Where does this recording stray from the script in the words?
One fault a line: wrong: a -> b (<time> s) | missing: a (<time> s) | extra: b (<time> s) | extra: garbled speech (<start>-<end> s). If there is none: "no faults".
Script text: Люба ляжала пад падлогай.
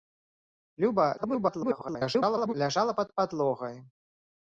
extra: garbled speech (1.2-2.5 s)